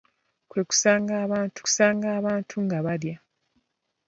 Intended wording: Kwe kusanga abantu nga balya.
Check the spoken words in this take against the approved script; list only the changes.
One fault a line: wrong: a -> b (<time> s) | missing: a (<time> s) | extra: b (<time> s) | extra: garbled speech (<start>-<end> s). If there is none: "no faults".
extra: kusanga abantu (1.6 s)